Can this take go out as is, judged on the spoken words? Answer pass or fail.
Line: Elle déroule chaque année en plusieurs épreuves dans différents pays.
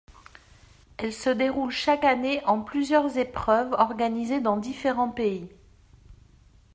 fail